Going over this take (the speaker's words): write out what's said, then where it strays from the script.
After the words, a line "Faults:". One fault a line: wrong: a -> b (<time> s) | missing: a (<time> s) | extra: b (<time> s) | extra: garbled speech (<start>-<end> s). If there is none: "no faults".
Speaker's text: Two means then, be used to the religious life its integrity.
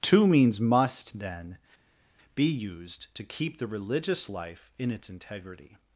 Two means must, then, be used to keep the religious life in its integrity.
Faults:
extra: must (0.6 s)
extra: keep (3.2 s)
extra: in (4.8 s)